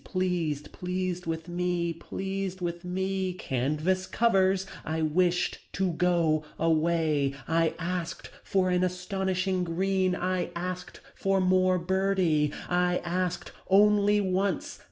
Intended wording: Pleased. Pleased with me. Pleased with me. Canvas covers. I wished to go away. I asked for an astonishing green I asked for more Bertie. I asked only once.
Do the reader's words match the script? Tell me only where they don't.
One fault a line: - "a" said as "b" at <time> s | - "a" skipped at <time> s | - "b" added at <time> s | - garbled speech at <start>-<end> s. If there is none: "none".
none